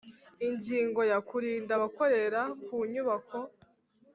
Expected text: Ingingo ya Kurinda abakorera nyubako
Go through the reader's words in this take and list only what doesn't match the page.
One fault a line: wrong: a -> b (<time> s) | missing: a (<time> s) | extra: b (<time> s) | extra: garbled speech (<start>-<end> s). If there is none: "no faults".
extra: ku (2.7 s)